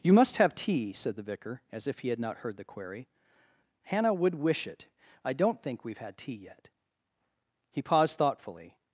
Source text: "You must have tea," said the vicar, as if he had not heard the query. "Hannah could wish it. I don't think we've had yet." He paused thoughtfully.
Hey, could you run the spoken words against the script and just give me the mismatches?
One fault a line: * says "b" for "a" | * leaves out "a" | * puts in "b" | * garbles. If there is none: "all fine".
* says "would" for "could"
* puts in "tea"